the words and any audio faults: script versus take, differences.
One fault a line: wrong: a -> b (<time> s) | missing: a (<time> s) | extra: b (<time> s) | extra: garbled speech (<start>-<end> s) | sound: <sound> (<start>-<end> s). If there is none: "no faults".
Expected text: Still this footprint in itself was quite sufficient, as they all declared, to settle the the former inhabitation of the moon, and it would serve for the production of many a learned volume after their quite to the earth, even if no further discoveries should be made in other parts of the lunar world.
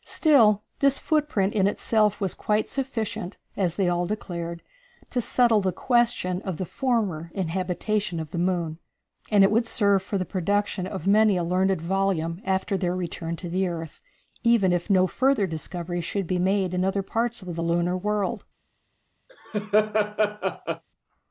extra: question of (5.7 s)
wrong: quite -> return (12.9 s)
sound: laugh (19.3-20.8 s)